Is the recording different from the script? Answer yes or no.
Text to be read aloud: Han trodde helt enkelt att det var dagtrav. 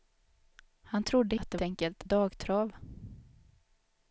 yes